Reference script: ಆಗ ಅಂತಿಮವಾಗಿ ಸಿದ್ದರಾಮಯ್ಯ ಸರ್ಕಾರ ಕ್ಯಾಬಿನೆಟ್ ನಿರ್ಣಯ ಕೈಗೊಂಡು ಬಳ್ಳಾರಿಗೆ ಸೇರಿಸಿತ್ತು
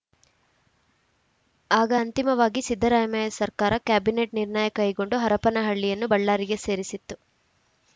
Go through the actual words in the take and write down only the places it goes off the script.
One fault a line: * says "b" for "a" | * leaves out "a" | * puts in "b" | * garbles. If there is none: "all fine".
* puts in "ಹರಪನಹಳ್ಳಿಯನ್ನು"